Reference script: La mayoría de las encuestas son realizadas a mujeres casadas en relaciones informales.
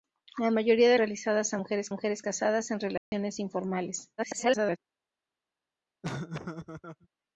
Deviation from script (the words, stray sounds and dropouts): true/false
true